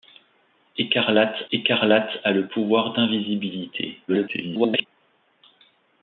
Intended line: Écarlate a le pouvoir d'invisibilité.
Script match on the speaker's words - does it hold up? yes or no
no